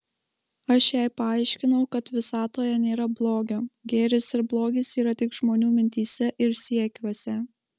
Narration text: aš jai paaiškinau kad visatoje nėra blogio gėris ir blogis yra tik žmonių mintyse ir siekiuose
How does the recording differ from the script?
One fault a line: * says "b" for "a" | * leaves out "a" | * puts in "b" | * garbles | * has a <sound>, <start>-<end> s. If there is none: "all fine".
all fine